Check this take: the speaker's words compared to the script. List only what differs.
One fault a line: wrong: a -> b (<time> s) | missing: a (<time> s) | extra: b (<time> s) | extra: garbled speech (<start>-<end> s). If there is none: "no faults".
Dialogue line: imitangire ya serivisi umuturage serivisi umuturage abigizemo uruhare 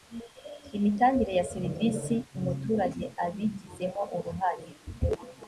missing: serivisi umuturage (3.0 s)